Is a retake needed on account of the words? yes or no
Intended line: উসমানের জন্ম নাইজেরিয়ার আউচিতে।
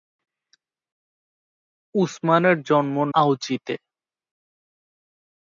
yes